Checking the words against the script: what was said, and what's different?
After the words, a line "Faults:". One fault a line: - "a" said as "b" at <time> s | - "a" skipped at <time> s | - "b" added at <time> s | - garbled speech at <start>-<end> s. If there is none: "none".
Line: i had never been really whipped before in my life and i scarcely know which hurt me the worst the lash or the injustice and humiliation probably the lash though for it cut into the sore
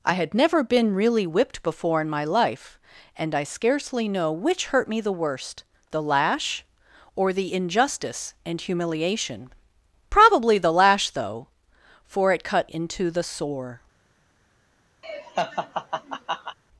i had never been really whipped before in my life and i scarcely know which hurt me the worst the lash or the injustice and humiliation probably the lash though for it cut into the sore
Faults:
none